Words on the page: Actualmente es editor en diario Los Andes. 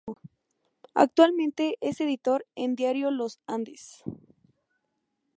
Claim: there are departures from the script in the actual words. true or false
false